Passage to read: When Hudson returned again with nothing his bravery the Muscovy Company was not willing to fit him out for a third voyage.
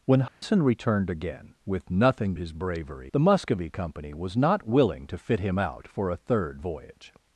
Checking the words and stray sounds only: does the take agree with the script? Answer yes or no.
no